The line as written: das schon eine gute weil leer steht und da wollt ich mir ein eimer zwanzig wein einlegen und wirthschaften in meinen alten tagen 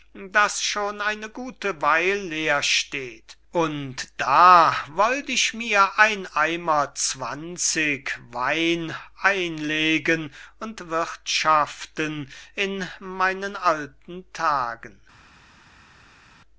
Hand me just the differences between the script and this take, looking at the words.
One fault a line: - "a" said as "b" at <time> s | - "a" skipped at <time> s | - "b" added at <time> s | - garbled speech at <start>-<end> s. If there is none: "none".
none